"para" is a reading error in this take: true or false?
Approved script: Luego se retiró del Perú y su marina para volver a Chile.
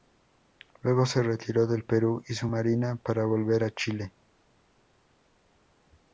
false